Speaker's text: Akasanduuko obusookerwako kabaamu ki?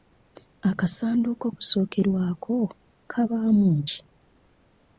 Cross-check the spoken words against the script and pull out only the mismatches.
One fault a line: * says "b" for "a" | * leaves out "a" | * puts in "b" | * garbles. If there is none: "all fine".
all fine